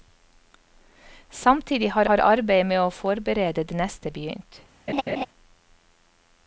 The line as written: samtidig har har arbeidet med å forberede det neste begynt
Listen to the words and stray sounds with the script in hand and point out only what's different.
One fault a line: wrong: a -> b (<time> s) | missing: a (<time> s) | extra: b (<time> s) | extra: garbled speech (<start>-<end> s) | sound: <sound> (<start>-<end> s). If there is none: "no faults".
sound: laugh (4.9-5.3 s)